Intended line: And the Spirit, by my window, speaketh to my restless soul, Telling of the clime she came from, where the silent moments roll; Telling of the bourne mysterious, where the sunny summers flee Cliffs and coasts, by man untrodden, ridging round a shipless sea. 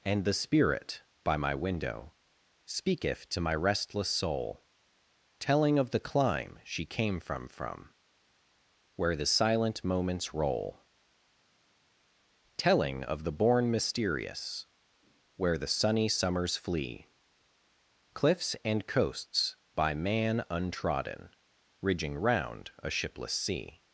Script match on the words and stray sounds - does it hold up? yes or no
no